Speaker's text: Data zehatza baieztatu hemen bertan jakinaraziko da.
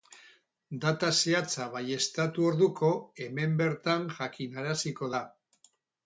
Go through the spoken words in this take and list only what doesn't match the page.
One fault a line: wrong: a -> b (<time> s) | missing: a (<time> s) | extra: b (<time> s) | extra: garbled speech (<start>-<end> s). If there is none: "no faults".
extra: orduko (2.5 s)